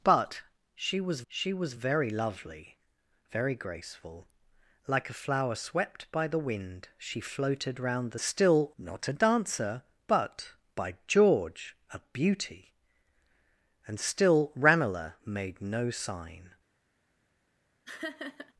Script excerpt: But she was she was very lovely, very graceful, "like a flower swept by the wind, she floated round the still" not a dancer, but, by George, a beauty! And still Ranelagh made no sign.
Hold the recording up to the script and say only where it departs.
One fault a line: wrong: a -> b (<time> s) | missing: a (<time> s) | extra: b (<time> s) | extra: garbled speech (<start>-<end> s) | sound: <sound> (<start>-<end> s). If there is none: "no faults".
sound: laugh (17.9-18.5 s)